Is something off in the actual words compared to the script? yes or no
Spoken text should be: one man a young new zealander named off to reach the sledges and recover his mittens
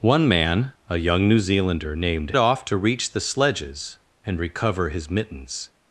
no